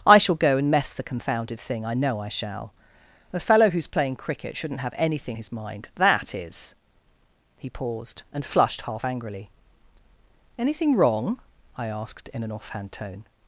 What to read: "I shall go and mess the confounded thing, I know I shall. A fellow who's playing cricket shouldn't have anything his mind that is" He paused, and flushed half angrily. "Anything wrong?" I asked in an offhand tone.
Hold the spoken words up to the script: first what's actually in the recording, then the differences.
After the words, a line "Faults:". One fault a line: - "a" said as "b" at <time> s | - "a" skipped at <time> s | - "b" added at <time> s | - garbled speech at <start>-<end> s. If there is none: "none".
"I shall go and mess the confounded thing, I know I shall. A fellow who's playing cricket shouldn't have anything his mind that is" He paused, and flushed half angrily. "Anything wrong?" I asked in an offhand tone.
Faults:
none